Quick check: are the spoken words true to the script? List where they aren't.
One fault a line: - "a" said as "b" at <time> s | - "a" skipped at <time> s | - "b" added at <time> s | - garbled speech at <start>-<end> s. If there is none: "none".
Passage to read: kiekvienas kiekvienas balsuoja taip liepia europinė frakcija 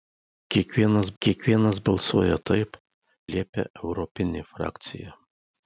none